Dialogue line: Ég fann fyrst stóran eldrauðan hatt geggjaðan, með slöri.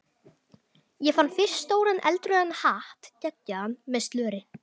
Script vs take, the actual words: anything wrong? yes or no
no